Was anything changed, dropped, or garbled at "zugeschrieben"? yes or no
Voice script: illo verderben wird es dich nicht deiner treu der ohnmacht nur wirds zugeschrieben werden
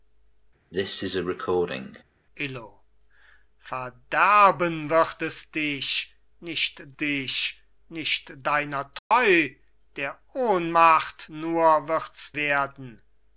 yes